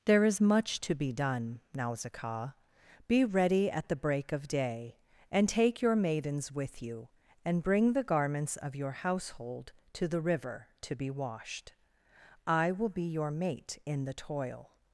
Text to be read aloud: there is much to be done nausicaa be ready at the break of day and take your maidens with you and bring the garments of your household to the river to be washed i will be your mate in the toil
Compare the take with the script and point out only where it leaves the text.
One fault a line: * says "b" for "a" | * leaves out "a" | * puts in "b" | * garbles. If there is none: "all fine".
all fine